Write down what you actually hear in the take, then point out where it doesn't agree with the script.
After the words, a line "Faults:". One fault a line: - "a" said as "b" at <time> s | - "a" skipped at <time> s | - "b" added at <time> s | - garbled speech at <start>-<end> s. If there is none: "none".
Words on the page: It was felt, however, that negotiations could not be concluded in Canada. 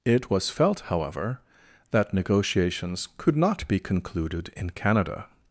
It was felt, however, that negotiations could not be concluded in Canada.
Faults:
none